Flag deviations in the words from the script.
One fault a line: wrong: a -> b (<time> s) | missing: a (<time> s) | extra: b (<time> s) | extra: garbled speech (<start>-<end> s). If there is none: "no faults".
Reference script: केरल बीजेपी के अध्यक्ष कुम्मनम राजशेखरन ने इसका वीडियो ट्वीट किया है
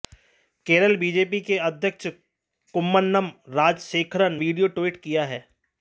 missing: ने इसका (4.4 s)